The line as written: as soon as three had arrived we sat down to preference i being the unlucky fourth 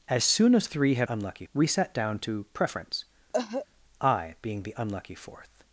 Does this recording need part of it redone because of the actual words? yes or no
yes